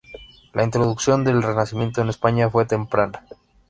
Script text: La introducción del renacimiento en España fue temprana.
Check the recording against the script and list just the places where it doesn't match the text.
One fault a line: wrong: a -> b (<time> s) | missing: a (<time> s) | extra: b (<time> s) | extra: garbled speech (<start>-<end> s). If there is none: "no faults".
no faults